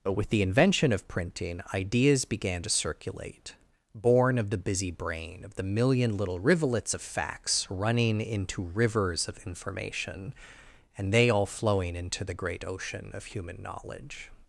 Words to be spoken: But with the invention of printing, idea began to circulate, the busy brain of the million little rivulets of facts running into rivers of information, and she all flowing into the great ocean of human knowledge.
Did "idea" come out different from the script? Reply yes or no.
yes